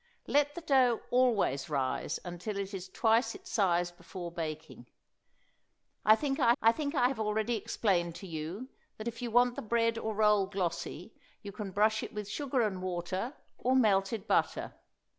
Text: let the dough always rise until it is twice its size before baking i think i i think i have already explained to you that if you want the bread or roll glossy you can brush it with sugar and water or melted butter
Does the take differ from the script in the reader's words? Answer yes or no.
no